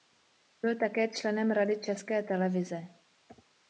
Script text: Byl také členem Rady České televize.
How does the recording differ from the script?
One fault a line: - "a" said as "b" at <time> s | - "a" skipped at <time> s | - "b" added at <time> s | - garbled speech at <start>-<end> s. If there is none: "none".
none